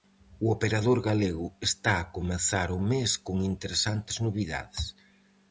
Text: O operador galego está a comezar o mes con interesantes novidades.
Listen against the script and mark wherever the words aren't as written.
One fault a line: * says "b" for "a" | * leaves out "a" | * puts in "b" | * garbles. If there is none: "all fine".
all fine